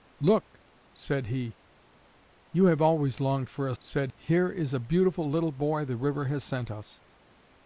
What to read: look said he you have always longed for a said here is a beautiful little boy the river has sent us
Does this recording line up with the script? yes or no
yes